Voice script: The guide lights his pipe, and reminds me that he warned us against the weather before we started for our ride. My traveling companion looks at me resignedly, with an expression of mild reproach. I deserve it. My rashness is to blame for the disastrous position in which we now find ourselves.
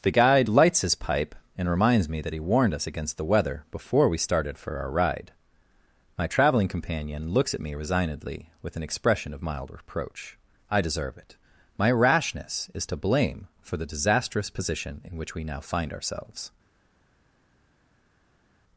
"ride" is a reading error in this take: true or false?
false